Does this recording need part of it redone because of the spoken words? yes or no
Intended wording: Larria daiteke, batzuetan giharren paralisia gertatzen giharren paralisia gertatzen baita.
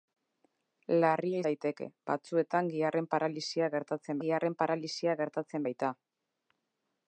no